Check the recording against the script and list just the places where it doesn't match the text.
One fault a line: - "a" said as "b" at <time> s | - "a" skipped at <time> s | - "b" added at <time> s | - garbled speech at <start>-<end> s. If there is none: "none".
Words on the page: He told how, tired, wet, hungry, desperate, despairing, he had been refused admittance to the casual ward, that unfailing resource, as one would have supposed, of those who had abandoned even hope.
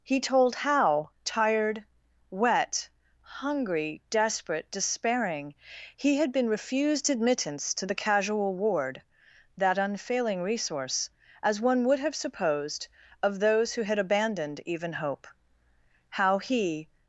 - "How he" added at 16.1 s